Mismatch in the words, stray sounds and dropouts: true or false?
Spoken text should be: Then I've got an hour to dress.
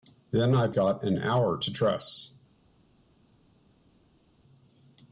false